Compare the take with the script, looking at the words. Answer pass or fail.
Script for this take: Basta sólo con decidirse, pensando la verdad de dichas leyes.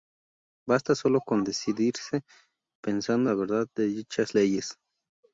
pass